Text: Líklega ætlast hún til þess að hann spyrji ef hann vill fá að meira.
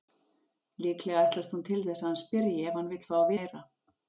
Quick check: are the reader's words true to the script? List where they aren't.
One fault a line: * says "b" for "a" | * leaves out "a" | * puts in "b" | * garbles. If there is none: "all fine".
all fine